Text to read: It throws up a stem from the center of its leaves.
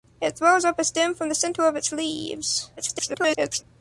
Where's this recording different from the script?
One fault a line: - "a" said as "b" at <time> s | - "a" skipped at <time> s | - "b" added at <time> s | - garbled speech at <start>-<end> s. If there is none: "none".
- garbled speech at 2.8-3.6 s